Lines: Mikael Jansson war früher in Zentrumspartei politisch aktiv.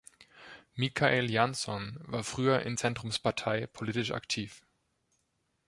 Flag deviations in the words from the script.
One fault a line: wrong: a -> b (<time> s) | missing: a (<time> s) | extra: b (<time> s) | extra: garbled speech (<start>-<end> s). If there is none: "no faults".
no faults